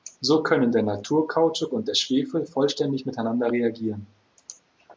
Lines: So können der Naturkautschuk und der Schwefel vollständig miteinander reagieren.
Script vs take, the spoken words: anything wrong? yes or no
no